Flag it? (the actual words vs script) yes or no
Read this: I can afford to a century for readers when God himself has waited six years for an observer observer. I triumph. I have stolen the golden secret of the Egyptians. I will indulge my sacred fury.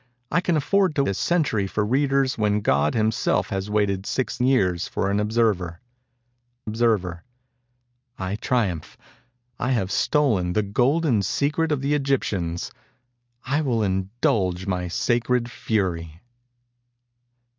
no